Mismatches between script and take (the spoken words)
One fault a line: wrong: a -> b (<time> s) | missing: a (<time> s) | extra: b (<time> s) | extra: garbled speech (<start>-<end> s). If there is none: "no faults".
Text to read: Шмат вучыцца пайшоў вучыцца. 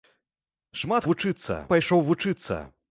no faults